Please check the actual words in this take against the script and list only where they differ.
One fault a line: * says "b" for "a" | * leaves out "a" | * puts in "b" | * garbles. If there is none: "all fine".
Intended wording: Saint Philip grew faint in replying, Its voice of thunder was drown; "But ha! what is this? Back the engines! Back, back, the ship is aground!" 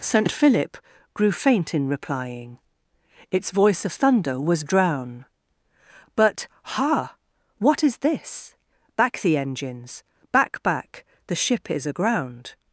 all fine